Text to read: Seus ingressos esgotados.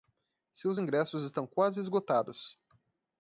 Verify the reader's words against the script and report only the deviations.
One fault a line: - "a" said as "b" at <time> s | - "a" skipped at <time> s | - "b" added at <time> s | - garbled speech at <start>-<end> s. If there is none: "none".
- "estão quase" added at 1.2 s